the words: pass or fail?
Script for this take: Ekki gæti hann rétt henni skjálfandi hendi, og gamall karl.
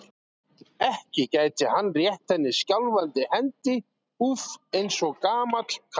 fail